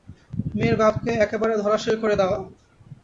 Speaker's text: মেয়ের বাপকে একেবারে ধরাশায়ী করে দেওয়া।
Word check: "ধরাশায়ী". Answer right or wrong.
right